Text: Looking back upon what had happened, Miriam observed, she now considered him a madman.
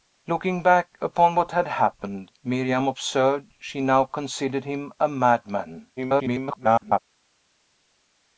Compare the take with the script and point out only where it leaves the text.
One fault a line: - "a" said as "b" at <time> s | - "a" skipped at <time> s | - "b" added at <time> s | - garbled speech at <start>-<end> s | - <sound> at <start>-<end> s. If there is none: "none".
- garbled speech at 6.0-7.0 s